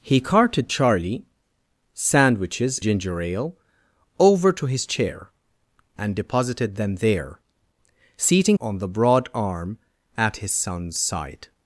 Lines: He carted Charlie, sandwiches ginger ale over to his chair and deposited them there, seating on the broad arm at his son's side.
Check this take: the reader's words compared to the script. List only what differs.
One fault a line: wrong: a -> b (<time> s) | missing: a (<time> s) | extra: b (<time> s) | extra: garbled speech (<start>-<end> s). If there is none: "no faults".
no faults